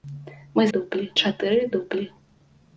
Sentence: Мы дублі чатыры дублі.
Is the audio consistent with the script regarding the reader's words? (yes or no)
yes